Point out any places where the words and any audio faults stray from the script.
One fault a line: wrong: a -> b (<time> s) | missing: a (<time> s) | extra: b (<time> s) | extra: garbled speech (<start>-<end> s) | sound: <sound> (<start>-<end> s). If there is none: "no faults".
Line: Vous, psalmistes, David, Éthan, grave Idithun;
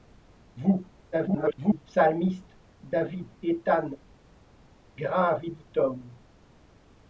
extra: garbled speech (1.1-1.8 s)